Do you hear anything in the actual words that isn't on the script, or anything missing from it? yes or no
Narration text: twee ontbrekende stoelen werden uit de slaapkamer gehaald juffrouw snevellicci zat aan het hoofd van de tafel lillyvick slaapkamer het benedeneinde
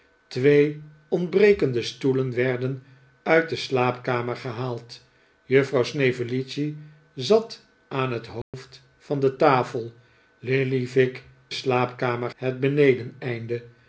no